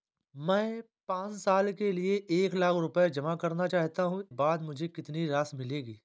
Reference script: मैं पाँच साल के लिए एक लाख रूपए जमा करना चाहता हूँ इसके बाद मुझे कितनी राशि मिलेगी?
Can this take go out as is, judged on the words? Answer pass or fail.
fail